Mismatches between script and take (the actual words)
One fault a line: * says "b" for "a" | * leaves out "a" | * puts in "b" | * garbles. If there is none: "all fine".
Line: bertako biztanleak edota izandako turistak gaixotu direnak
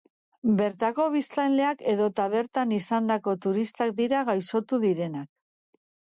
* puts in "bertan"
* puts in "dira"